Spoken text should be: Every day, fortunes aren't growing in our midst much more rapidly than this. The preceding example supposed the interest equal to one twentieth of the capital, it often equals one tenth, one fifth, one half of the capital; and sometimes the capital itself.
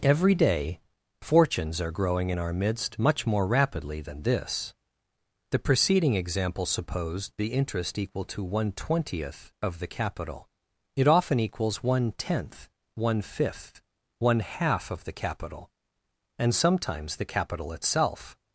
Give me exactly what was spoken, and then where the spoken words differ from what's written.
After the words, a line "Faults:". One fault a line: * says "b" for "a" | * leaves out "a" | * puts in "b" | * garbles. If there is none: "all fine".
Every day, fortunes are growing in our midst much more rapidly than this. The preceding example supposed the interest equal to one twentieth of the capital, it often equals one tenth, one fifth, one half of the capital; and sometimes the capital itself.
Faults:
* says "are" for "aren't"